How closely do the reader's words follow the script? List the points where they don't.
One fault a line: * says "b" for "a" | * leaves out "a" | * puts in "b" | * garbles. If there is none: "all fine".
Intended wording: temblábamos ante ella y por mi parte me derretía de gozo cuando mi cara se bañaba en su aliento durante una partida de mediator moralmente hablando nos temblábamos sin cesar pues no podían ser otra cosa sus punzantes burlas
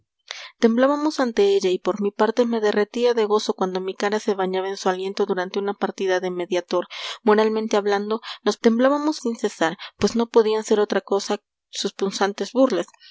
all fine